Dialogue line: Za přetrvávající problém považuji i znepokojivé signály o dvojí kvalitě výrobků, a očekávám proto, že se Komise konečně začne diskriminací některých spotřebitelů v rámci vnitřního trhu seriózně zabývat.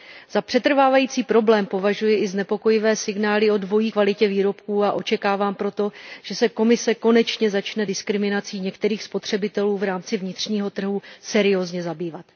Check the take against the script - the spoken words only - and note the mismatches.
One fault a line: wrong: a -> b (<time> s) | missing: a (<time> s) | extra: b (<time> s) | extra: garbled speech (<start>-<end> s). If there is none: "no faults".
no faults